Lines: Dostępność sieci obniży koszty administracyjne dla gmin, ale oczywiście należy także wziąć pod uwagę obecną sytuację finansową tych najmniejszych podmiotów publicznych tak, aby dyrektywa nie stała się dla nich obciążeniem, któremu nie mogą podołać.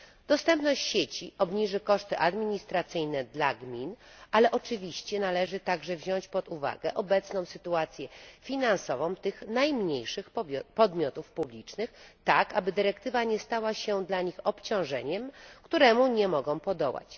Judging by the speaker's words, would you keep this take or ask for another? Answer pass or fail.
pass